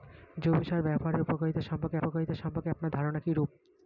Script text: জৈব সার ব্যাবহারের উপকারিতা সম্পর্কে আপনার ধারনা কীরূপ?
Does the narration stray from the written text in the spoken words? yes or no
yes